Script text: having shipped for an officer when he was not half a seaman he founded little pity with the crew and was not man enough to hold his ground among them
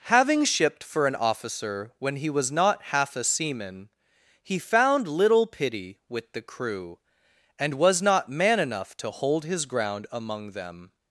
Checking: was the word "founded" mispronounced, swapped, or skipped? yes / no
yes